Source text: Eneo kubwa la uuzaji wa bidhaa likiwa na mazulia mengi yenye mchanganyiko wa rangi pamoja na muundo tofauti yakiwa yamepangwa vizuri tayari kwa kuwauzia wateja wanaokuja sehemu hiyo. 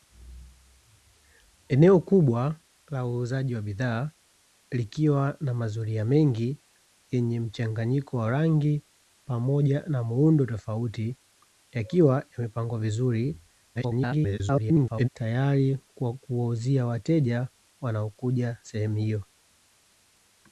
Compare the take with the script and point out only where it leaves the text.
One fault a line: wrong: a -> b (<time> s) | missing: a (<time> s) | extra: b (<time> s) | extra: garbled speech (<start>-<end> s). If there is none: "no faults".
extra: garbled speech (13.7-15.1 s)